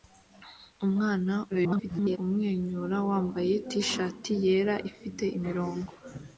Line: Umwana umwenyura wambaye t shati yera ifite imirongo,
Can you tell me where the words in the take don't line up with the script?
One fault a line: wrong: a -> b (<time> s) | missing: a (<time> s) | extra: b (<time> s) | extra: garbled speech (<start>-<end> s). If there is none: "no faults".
extra: garbled speech (1.5-2.2 s)